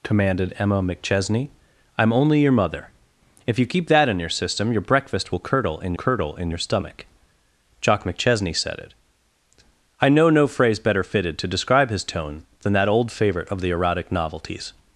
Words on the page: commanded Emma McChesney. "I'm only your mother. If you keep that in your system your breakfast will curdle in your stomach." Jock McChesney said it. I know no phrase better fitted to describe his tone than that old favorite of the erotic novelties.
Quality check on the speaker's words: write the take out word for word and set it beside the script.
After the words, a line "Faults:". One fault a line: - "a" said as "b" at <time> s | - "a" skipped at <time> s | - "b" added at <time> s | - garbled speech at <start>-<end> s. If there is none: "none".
commanded Emma McChesney. "I'm only your mother. If you keep that in your system your breakfast will curdle in curdle in your stomach." Jock McChesney said it. I know no phrase better fitted to describe his tone than that old favorite of the erotic novelties.
Faults:
- "curdle in" added at 5.9 s